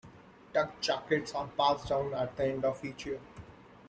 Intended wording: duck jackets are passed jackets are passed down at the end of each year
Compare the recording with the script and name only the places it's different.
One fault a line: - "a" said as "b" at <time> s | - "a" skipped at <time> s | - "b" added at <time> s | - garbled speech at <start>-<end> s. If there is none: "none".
- "jackets are passed" skipped at 1.9 s